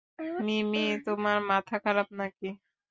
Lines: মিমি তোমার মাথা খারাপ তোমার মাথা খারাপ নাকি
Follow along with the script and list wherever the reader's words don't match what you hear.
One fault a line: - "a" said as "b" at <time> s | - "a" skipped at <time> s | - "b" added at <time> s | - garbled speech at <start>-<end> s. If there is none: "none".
- "তোমার মাথা খারাপ" skipped at 2.1 s